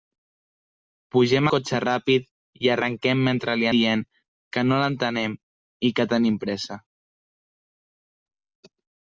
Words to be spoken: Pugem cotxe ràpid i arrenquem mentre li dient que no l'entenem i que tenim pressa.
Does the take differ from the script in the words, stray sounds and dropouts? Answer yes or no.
no